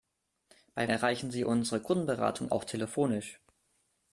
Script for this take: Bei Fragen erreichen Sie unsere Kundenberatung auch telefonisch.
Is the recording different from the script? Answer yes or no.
yes